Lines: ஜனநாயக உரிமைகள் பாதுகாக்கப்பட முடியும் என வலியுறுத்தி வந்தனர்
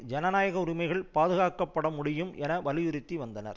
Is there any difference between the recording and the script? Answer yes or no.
no